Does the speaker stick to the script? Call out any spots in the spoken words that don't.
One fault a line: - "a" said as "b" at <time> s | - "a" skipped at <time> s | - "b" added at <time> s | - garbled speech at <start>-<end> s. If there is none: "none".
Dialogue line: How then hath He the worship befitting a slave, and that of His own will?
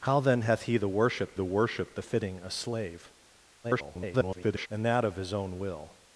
- "the worship" added at 1.3 s
- garbled speech at 3.6-4.7 s